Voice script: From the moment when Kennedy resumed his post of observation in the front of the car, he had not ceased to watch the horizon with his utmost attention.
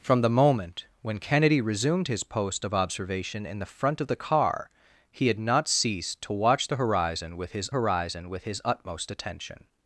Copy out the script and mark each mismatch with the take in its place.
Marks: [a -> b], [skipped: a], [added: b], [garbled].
From the moment when Kennedy resumed his post of observation in the front of the car, he had not ceased to watch the horizon with his [added: horizon with his] utmost attention.